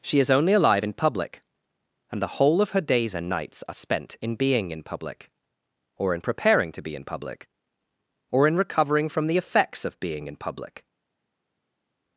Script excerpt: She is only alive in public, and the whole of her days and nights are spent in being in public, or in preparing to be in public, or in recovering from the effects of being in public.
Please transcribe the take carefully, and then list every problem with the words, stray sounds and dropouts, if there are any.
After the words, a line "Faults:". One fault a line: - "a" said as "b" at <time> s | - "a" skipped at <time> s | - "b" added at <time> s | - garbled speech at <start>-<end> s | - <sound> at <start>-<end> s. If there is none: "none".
She is only alive in public, and the whole of her days and nights are spent in being in public, or in preparing to be in public, or in recovering from the effects of being in public.
Faults:
none